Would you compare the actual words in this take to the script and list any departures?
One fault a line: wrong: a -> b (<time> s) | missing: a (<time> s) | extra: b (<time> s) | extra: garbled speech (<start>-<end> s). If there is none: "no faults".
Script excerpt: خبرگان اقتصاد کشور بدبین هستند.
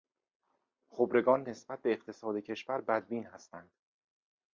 extra: نسبت به (1.5 s)